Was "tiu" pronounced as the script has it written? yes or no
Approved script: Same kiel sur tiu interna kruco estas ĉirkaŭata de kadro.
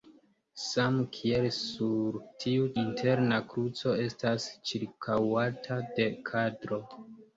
yes